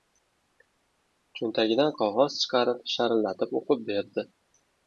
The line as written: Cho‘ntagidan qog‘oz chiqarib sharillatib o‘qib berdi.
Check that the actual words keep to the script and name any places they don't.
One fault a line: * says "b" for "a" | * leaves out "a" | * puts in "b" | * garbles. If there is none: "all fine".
all fine